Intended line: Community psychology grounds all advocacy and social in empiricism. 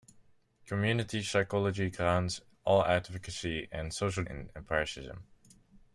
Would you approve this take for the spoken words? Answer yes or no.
yes